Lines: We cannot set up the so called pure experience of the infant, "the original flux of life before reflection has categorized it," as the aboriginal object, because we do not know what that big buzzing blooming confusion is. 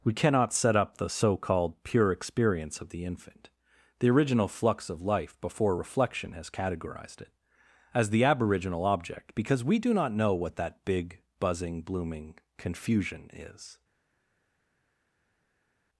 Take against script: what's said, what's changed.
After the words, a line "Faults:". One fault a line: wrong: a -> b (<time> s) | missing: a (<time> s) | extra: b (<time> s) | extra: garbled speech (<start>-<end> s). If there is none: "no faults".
We cannot set up the so called pure experience of the infant, "the original flux of life before reflection has categorized it," as the aboriginal object, because we do not know what that big buzzing blooming confusion is.
Faults:
no faults